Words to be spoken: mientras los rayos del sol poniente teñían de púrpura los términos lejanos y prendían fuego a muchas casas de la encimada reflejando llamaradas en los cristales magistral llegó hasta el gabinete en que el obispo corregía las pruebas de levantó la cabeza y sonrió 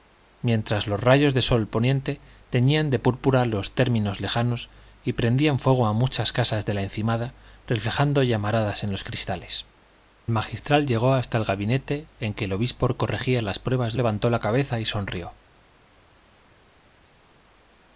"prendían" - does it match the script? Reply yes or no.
yes